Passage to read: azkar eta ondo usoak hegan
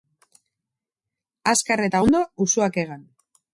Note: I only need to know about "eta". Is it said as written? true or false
true